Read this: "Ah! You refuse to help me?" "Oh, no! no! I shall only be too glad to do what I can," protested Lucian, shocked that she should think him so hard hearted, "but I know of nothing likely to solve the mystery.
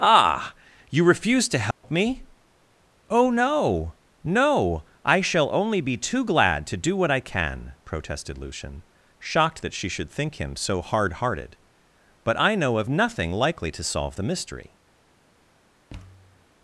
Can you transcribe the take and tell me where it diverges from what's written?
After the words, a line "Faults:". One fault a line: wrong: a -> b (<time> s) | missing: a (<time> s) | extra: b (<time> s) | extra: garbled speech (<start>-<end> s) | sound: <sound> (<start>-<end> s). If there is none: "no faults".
"Ah! You refuse to help me?" "Oh, no! no! I shall only be too glad to do what I can," protested Lucian, shocked that she should think him so hard hearted, "but I know of nothing likely to solve the mystery.
Faults:
sound: dropout (1.7-1.8 s)
sound: thud (15.9-16.5 s)